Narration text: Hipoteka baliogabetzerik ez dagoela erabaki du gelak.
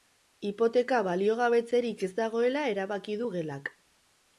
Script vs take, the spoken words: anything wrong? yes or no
no